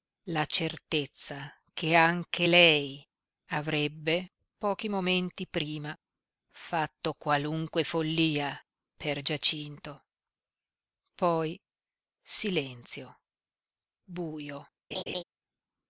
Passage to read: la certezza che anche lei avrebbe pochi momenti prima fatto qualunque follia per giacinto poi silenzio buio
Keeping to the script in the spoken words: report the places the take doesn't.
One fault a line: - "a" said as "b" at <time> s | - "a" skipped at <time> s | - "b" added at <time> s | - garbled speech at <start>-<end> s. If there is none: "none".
none